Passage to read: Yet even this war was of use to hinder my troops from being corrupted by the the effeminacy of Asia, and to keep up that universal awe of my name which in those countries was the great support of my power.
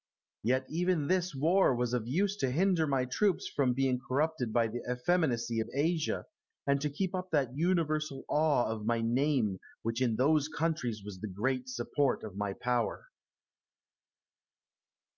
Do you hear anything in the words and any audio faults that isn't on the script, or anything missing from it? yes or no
yes